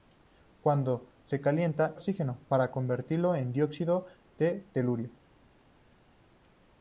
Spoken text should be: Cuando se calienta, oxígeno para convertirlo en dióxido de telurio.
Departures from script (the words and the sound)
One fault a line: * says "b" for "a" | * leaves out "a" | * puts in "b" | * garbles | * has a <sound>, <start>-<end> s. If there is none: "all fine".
all fine